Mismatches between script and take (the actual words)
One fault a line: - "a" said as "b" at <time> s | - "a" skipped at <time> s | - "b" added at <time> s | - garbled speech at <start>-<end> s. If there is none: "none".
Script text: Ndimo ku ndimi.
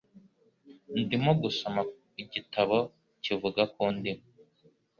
- "gusoma igitabo kivuga" added at 1.4 s